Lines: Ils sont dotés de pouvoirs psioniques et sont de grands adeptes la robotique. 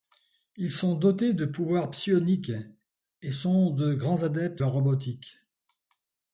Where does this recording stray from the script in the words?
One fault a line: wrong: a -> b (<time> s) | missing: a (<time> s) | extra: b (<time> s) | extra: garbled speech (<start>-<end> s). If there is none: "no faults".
no faults